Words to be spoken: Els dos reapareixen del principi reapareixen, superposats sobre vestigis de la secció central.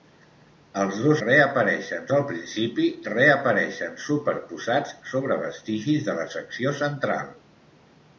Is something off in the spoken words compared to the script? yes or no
no